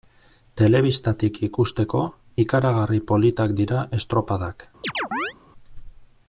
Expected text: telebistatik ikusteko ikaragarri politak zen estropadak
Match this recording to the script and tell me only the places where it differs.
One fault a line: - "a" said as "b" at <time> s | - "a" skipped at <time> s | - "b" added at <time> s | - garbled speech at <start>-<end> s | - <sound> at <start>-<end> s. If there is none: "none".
- "zen" said as "dira" at 3.6 s
- chirp at 4.8-5.3 s